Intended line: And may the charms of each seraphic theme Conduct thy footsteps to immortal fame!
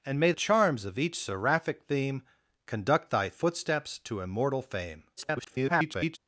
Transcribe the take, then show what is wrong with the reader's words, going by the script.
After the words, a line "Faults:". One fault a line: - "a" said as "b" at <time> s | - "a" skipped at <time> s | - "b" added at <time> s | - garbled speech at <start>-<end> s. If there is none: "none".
And may charms of each seraphic theme Conduct thy footsteps to immortal fame! [garbled]
Faults:
- "the" skipped at 0.3 s
- garbled speech at 5.2-6.2 s